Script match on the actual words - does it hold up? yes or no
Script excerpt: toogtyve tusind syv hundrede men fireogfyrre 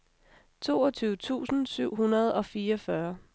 no